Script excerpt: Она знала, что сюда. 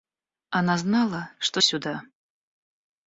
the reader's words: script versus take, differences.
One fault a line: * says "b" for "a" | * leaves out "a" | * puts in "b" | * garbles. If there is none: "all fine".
all fine